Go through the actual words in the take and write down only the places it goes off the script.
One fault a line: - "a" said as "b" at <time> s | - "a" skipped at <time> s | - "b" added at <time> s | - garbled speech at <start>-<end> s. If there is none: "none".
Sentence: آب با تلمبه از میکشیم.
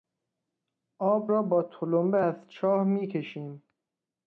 - "را" added at 1.3 s
- "چاه" added at 2.5 s